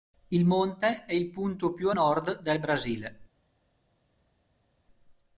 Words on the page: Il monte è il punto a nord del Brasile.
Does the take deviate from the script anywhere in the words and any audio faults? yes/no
yes